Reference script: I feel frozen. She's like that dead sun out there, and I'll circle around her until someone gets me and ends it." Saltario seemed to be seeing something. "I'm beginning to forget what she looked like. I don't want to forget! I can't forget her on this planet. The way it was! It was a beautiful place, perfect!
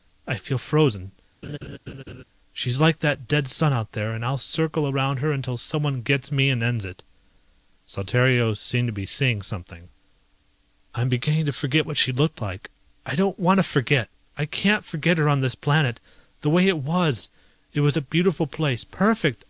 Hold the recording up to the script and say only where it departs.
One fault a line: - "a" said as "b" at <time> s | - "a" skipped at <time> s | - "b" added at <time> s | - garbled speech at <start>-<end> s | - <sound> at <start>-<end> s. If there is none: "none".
- laugh at 1.4-2.2 s